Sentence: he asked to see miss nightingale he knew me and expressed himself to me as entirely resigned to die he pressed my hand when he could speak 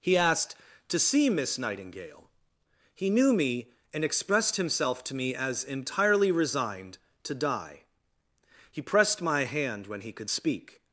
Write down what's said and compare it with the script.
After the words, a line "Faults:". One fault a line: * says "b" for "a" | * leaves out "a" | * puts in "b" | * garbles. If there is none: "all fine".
he asked to see miss nightingale he knew me and expressed himself to me as entirely resigned to die he pressed my hand when he could speak
Faults:
all fine